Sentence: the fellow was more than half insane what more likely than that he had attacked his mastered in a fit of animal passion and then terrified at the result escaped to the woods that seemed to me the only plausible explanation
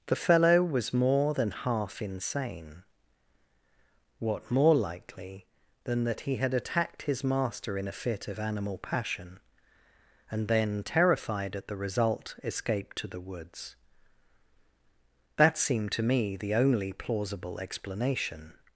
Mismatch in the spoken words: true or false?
true